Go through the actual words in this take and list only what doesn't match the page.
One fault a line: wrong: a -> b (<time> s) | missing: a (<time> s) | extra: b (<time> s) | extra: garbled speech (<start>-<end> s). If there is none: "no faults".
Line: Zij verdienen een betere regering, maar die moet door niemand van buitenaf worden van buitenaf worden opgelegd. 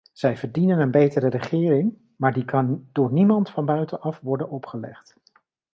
wrong: moet -> kan (2.5 s)
missing: van buitenaf worden (4.5 s)